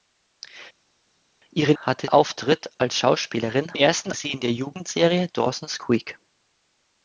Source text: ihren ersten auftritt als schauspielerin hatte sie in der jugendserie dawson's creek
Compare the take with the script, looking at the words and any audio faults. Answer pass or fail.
fail